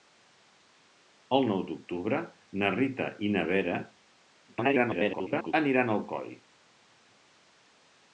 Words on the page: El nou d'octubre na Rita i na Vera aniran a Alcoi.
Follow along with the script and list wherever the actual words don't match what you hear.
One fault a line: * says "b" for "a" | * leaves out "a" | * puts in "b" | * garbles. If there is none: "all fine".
* garbles